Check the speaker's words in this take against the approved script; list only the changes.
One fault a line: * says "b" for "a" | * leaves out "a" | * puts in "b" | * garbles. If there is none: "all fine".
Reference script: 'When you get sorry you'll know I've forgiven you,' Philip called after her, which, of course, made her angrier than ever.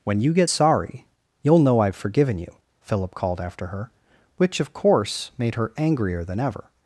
all fine